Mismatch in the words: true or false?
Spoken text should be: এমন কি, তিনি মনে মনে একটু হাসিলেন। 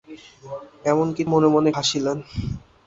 true